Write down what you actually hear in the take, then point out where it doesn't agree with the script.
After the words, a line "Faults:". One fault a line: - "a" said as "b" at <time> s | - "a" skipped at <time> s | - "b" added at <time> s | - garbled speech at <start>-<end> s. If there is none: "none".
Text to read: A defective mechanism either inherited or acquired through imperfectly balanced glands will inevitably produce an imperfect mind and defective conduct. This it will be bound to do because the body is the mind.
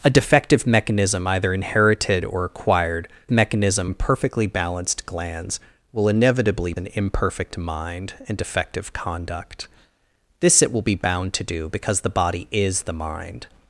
A defective mechanism either inherited or acquired mechanism imperfectly balanced glands will inevitably an imperfect mind and defective conduct. This it will be bound to do because the body is the mind.
Faults:
- "through" said as "mechanism" at 3.3 s
- "produce" skipped at 6.7 s